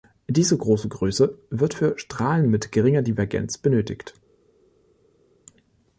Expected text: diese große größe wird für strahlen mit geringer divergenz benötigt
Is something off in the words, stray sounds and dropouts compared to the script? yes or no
no